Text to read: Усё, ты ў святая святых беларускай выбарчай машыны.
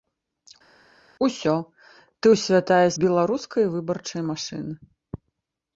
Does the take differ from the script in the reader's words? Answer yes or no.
yes